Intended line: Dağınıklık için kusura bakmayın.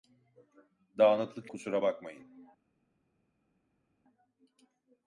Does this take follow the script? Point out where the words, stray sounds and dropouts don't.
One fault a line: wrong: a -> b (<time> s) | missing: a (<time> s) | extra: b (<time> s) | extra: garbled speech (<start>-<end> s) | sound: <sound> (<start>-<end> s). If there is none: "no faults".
missing: için (1.5 s)